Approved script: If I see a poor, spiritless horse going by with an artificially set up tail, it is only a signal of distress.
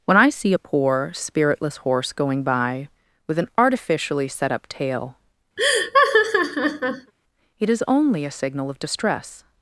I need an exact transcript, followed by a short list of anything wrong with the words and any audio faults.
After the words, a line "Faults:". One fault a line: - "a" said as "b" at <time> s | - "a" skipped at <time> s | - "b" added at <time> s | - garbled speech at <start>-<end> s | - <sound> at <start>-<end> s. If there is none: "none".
When I see a poor, spiritless horse going by with an artificially set up tail, it is only a signal of distress.
Faults:
- "If" said as "When" at 0.1 s
- laugh at 5.6-7.1 s